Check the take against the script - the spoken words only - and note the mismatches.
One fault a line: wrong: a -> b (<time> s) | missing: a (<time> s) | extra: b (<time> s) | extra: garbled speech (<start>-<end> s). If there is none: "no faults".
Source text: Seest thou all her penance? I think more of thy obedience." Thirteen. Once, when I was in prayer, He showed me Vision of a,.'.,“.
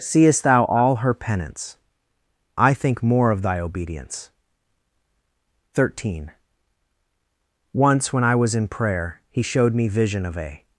no faults